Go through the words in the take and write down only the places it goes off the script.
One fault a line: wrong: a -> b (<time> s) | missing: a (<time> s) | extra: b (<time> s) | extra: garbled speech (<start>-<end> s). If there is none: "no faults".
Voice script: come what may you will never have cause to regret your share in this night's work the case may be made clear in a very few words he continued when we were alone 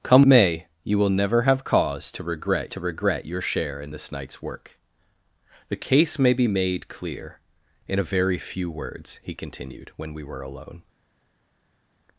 missing: what (0.2 s)
extra: to regret (2.7 s)